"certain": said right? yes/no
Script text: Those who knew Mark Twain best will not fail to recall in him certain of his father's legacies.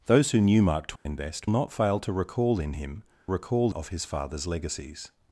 no